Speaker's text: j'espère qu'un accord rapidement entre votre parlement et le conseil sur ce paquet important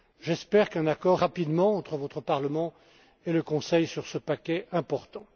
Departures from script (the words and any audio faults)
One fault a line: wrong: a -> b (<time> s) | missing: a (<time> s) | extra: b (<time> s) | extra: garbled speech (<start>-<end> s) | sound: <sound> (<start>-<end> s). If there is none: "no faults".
no faults